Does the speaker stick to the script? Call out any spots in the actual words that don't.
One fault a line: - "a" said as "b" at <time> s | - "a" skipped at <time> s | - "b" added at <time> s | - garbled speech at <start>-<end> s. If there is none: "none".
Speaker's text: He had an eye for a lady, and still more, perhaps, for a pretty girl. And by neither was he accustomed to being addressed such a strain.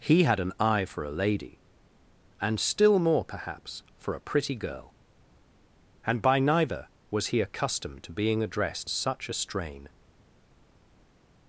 none